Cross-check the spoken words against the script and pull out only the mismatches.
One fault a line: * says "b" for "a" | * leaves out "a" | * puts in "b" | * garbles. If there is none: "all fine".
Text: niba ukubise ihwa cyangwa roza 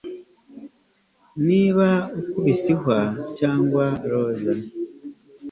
all fine